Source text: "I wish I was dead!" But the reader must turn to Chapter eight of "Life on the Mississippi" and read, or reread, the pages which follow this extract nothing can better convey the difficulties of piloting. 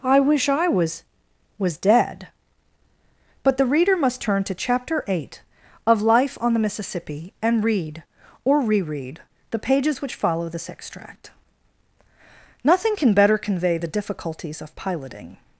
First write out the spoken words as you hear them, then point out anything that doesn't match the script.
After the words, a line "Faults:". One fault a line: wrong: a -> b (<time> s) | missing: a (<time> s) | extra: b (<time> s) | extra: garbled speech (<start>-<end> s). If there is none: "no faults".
"I wish I was was dead!" But the reader must turn to Chapter eight of "Life on the Mississippi" and read, or reread, the pages which follow this extract nothing can better convey the difficulties of piloting.
Faults:
extra: was (1.6 s)